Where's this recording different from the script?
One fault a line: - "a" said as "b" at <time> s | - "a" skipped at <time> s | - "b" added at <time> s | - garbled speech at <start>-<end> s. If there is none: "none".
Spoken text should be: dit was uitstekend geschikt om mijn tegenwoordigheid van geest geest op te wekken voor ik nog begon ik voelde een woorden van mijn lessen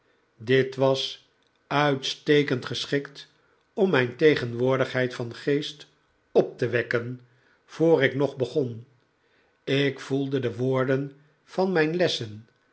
- "geest" skipped at 5.9 s
- "een" said as "de" at 10.4 s